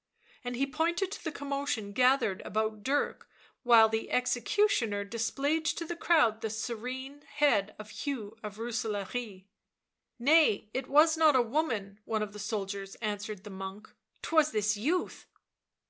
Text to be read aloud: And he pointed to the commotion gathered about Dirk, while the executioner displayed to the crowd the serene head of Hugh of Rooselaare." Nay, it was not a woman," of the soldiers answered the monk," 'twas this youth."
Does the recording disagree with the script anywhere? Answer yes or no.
yes